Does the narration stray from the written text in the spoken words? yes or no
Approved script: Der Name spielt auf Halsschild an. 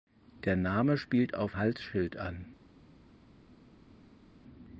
no